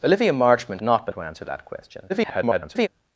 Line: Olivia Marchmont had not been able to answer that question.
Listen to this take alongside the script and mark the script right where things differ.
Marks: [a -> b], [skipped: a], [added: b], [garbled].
Olivia Marchmont [skipped: had] not been [skipped: able] to answer that question. [garbled]